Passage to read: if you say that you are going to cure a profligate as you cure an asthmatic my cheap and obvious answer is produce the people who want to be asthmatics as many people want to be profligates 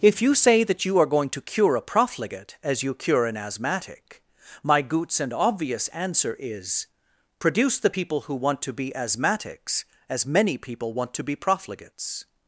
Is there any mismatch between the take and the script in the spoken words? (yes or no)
yes